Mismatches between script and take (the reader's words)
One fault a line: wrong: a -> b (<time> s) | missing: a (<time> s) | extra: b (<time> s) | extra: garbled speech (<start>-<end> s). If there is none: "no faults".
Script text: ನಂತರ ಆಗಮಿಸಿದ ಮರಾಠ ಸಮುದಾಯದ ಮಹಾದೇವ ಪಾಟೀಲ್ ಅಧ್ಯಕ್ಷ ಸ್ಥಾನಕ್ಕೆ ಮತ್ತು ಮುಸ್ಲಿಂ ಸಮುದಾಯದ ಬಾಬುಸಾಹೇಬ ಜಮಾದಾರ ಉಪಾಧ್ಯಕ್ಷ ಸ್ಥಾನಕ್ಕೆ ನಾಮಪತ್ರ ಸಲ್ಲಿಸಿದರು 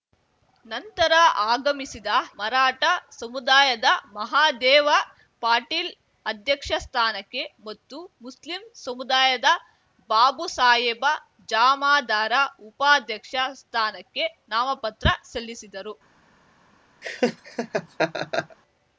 no faults